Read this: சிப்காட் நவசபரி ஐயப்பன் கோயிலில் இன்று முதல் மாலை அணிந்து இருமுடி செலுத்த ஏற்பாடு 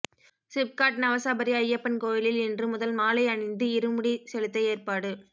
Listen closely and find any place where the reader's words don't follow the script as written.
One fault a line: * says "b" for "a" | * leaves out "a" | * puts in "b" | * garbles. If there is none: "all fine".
all fine